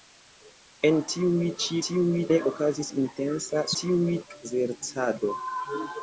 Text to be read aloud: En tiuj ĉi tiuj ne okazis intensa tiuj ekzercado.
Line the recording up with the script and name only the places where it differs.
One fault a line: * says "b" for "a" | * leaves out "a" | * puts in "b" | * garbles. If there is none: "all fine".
all fine